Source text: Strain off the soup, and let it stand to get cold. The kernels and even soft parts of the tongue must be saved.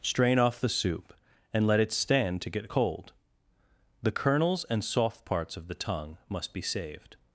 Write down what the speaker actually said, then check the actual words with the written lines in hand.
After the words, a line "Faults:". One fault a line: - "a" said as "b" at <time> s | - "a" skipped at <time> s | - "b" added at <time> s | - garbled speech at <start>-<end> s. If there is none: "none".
Strain off the soup, and let it stand to get cold. The kernels and soft parts of the tongue must be saved.
Faults:
- "even" skipped at 4.8 s